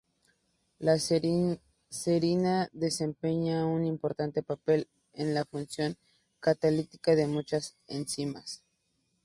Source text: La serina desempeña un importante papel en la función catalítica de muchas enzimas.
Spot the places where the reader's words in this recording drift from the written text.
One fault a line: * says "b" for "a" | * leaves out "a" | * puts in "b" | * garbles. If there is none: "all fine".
all fine